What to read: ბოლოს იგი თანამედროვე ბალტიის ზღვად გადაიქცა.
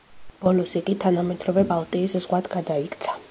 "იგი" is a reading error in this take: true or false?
false